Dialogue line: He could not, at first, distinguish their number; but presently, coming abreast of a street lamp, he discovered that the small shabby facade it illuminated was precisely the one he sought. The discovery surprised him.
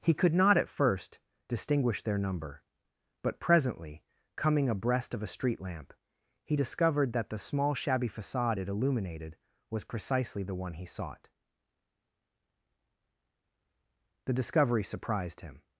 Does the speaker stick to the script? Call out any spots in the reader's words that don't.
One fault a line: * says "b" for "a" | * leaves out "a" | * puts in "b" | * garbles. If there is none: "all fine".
all fine